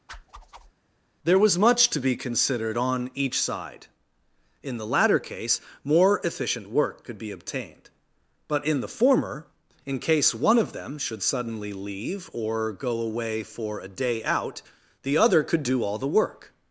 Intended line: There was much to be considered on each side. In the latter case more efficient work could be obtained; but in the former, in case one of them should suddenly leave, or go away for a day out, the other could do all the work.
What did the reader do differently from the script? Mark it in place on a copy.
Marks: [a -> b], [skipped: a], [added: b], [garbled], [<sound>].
[whoosh] There was much to be considered on each side. In the latter case more efficient work could be obtained; but in the former, in case one of them should suddenly leave, or go away for a day out, the other could do all the work.